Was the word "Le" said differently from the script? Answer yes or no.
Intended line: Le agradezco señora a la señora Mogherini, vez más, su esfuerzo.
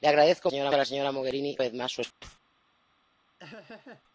no